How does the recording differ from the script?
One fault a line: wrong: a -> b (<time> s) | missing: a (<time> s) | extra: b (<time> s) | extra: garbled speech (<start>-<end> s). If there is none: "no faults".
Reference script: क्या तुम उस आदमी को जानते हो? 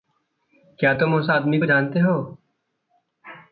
no faults